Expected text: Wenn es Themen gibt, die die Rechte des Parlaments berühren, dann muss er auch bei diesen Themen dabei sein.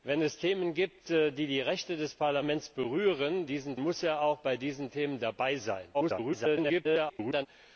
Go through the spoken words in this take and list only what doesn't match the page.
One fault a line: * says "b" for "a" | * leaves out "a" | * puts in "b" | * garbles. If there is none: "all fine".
* says "diesen" for "dann"
* garbles